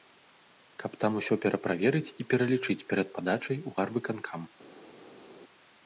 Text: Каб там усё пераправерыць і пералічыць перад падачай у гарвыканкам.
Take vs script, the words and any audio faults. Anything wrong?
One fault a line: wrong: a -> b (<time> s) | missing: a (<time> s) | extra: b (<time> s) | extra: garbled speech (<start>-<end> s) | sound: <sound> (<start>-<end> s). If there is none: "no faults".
no faults